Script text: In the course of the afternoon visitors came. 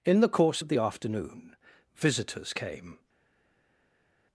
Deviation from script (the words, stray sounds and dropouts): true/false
false